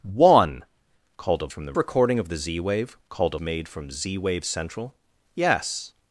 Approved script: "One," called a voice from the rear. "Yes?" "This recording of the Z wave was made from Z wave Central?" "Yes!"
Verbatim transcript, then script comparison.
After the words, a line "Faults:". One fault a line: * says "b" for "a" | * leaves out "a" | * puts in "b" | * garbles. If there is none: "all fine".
"One," called a from the recording of the Z wave called made from Z wave Central?" "Yes!"
Faults:
* leaves out "voice"
* leaves out "rear Yes This"
* says "called" for "was"